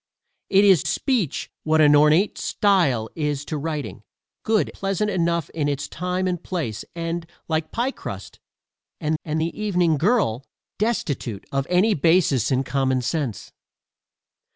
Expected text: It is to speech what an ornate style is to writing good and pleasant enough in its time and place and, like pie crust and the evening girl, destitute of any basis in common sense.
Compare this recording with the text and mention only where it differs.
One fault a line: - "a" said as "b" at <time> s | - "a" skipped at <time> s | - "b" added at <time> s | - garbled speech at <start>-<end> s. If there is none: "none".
- "to" skipped at 0.8 s
- "and" skipped at 4.7 s
- "and" added at 9.2 s